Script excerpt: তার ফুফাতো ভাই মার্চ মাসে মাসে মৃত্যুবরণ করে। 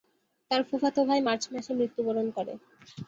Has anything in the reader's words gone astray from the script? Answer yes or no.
yes